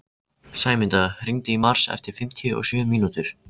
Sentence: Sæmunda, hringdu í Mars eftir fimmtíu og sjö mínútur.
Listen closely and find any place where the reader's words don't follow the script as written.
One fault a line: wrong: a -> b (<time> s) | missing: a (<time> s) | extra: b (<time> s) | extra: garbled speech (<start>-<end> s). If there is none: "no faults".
no faults